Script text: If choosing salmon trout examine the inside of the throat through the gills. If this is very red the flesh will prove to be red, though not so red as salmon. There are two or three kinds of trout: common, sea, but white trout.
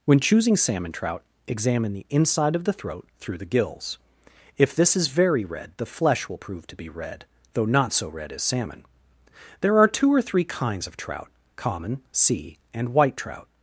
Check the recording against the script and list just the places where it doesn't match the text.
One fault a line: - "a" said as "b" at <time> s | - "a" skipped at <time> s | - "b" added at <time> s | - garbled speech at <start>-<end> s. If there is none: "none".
- "If" said as "When" at 0.1 s
- "but" said as "and" at 12.7 s